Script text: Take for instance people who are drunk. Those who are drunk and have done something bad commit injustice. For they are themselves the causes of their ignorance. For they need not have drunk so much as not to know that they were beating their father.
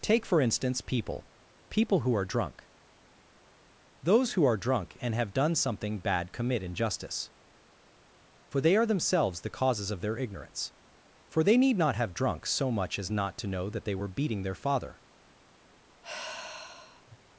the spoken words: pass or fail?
fail